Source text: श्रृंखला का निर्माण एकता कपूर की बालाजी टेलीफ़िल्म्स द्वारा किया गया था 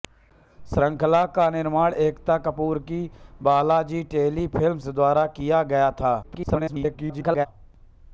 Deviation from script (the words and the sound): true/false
true